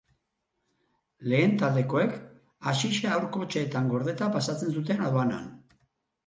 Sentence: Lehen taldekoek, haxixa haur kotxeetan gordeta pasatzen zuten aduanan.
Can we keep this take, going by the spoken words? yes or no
yes